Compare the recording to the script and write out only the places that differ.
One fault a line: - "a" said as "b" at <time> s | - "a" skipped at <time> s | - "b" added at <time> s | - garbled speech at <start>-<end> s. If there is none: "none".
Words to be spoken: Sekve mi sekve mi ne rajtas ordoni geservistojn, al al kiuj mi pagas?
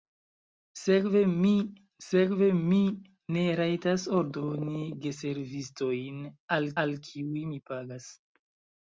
none